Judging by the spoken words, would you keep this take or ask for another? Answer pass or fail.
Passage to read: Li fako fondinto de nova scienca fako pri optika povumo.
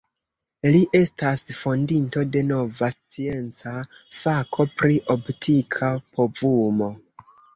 fail